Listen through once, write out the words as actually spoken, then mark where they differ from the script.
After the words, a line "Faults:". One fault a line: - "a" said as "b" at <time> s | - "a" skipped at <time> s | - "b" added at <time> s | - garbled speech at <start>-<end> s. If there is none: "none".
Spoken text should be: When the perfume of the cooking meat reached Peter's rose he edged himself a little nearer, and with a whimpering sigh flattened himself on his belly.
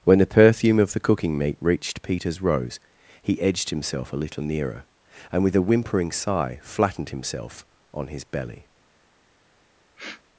When the perfume of the cooking meat reached Peter's rose he edged himself a little nearer, and with a whimpering sigh flattened himself on his belly.
Faults:
none